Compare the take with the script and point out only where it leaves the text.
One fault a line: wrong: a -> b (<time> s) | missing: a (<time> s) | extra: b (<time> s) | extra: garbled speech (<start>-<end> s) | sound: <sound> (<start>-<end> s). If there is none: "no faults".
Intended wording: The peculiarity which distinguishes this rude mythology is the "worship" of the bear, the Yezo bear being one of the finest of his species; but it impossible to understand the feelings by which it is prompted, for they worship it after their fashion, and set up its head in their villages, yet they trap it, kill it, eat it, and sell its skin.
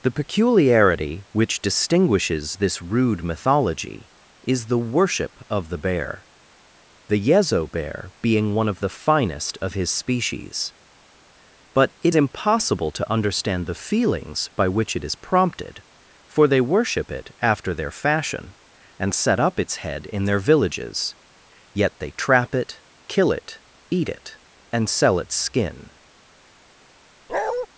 sound: bark (27.3-27.7 s)